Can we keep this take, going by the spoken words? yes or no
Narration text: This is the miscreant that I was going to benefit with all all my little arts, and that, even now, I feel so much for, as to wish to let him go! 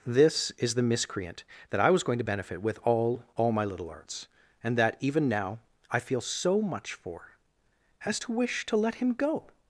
yes